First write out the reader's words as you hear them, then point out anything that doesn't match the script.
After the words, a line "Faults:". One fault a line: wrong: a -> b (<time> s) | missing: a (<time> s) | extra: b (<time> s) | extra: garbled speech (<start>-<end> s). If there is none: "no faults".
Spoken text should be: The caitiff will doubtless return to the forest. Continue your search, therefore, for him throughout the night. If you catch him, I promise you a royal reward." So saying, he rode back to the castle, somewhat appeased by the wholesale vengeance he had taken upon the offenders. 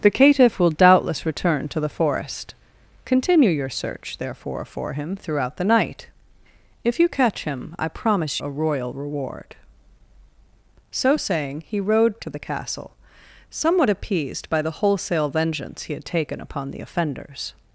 The caitiff will doubtless return to the forest. Continue your search, therefore, for him throughout the night. If you catch him, I promise a royal reward." So saying, he rode to the castle, somewhat appeased by the wholesale vengeance he had taken upon the offenders.
Faults:
missing: you (8.4 s)
missing: back (12.2 s)